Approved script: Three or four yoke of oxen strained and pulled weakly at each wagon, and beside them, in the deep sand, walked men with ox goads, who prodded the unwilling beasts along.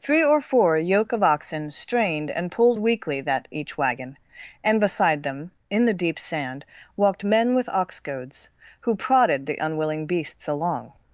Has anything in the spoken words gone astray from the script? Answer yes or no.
yes